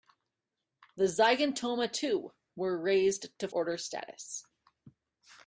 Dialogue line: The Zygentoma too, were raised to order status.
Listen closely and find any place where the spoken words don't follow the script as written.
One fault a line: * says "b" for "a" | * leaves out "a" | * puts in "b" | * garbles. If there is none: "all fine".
all fine